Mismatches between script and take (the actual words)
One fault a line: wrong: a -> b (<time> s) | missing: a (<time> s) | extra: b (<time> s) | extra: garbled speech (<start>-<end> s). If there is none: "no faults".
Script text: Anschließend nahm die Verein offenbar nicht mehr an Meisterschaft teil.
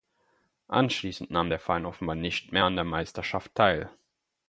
wrong: die -> der (1.5 s)
extra: der (2.7 s)